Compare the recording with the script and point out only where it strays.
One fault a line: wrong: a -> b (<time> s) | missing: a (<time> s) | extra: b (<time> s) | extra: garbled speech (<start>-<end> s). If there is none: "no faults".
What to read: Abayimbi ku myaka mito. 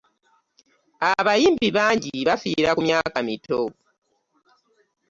extra: bangi bafiira (1.8 s)